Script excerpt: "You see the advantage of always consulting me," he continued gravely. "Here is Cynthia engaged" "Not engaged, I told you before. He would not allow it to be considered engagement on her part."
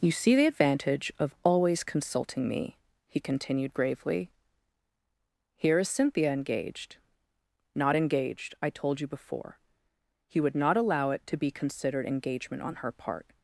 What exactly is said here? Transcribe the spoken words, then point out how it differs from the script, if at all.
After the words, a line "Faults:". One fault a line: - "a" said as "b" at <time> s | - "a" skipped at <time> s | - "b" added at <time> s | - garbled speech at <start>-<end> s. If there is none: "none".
"You see the advantage of always consulting me," he continued gravely. "Here is Cynthia engaged" "Not engaged, I told you before. He would not allow it to be considered engagement on her part."
Faults:
none